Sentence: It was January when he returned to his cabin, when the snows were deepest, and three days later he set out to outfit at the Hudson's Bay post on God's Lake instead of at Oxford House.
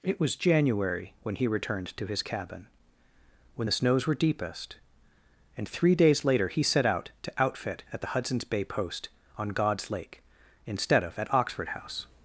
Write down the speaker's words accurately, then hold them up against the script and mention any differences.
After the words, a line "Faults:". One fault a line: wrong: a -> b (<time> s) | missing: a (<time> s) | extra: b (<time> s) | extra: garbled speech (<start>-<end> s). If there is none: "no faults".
It was January when he returned to his cabin, when the snows were deepest, and three days later he set out to outfit at the Hudson's Bay post on God's Lake instead of at Oxford House.
Faults:
no faults